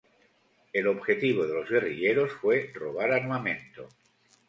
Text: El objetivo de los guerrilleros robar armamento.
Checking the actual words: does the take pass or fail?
fail